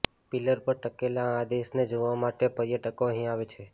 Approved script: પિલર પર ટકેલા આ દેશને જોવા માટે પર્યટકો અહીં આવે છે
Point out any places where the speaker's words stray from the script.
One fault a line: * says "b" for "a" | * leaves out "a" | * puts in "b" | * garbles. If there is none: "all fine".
all fine